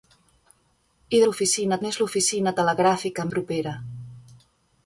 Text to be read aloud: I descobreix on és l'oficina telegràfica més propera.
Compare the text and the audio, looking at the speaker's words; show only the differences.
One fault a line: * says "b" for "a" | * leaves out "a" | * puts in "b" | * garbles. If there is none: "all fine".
* says "l'oficina" for "descobreix"
* leaves out "més"